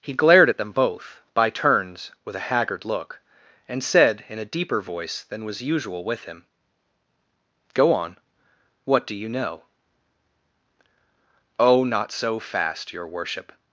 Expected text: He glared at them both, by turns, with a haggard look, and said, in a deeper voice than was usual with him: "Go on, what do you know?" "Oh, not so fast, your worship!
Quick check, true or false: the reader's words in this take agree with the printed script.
true